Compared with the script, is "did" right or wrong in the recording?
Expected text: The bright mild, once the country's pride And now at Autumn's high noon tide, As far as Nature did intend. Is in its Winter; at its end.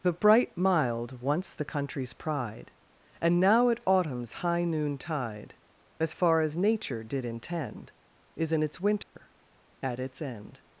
right